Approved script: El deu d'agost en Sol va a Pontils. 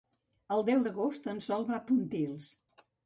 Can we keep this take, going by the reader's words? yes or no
yes